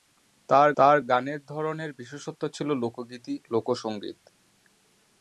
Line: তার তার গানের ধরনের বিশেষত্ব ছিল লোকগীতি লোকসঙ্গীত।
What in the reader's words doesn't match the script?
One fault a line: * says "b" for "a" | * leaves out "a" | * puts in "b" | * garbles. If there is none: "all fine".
all fine